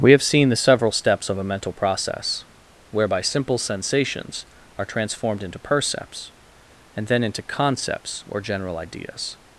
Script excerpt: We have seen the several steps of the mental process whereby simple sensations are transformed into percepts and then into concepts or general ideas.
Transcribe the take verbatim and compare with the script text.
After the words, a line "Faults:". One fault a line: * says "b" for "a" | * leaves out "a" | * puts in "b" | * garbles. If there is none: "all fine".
We have seen the several steps of a mental process whereby simple sensations are transformed into percepts and then into concepts or general ideas.
Faults:
* says "a" for "the"